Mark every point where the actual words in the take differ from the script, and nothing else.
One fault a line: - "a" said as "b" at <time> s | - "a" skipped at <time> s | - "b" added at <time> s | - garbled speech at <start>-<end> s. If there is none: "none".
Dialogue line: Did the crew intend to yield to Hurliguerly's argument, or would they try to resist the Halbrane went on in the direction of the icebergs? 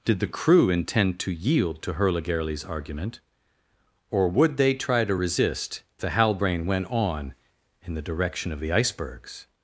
none